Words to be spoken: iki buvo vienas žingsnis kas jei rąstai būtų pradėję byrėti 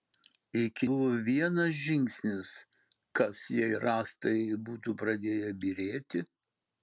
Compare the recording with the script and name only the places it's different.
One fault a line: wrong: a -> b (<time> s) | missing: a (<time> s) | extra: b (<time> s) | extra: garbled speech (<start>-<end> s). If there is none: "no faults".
no faults